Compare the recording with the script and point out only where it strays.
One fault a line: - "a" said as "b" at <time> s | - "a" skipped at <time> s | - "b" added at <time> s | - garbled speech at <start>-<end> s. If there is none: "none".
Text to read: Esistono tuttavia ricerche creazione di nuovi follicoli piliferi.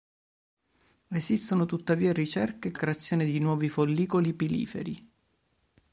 none